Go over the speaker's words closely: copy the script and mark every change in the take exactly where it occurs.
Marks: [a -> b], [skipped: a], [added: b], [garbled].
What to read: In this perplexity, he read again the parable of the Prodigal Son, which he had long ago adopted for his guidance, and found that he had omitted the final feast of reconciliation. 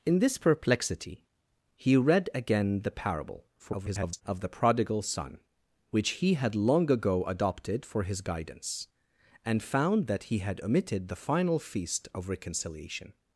In this perplexity, he read again the parable [garbled] of the Prodigal Son, which he had long ago adopted for his guidance, and found that he had omitted the final feast of reconciliation.